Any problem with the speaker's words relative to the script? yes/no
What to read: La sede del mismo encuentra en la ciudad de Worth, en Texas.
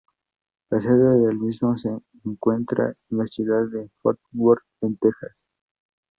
yes